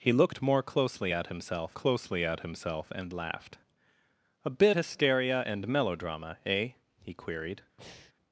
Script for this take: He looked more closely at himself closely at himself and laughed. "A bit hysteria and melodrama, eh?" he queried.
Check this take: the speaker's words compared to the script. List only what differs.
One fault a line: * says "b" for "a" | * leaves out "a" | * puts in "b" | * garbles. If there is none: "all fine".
all fine